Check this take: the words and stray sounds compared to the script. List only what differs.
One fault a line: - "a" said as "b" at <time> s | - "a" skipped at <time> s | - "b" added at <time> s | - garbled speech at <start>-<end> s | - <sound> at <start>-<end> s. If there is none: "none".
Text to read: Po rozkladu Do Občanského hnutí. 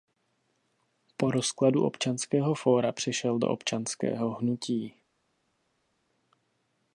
- "Občanského fóra přešel" added at 1.8 s